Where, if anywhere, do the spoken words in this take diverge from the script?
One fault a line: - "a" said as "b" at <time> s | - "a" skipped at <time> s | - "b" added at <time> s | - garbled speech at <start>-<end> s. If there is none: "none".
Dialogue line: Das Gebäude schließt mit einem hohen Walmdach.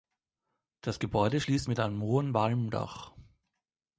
none